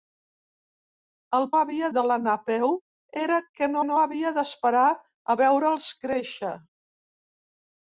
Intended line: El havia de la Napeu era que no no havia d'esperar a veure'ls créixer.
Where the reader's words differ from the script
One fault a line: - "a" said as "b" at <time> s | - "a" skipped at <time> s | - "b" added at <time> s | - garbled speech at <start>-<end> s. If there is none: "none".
none